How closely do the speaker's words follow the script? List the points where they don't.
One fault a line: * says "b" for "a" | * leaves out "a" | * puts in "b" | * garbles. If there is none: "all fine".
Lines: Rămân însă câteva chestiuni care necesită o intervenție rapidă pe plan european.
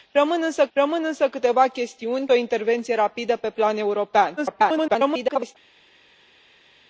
* puts in "rămân însă"
* leaves out "care necesită"
* garbles